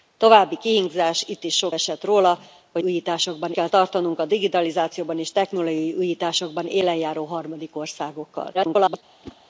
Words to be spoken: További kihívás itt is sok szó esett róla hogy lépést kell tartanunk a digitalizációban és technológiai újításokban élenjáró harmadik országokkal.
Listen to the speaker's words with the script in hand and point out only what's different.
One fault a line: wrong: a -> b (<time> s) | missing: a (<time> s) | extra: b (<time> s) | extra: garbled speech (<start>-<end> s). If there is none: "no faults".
missing: szó (1.8 s)
wrong: lépést -> újításokban (2.8 s)
extra: garbled speech (8.5-9.0 s)